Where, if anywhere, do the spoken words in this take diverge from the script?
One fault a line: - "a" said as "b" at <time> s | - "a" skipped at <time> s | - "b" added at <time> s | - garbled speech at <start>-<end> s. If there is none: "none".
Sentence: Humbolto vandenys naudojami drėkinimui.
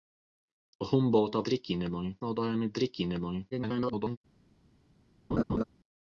- "vandenys" said as "drėkinimui" at 1.5 s
- garbled speech at 3.5-4.2 s